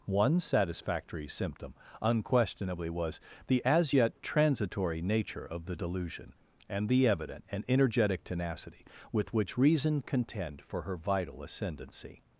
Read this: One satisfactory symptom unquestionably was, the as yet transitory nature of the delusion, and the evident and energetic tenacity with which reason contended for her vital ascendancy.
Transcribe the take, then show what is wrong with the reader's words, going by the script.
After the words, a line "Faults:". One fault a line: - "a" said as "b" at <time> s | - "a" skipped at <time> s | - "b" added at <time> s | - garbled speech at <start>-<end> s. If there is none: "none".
One satisfactory symptom unquestionably was, the as yet transitory nature of the delusion, and the evident and energetic tenacity with which reason contend for her vital ascendancy.
Faults:
- "contended" said as "contend" at 10.0 s